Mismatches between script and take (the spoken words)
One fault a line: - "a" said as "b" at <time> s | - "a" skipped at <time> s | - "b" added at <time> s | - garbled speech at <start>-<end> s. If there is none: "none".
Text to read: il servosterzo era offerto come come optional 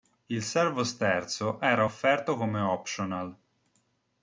- "come" skipped at 2.6 s